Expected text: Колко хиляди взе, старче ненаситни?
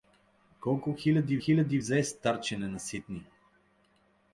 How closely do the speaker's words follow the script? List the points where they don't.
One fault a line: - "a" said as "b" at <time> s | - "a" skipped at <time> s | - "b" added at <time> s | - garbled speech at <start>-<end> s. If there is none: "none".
- "хиляди" added at 1.4 s